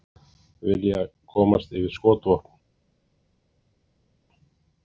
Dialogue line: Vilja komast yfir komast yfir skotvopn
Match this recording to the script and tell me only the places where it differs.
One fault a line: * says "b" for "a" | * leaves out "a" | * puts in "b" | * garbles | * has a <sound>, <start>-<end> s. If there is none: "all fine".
* leaves out "komast yfir"